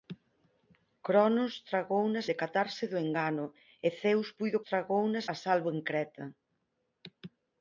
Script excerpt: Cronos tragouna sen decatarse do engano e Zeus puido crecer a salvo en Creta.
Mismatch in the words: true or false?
true